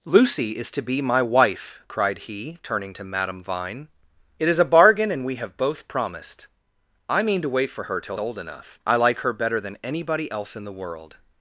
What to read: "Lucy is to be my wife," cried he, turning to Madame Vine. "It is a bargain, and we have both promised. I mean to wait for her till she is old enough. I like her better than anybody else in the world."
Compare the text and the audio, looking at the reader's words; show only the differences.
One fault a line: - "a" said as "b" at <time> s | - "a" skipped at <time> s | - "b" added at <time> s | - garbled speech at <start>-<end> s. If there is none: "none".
- "she is" skipped at 8.2 s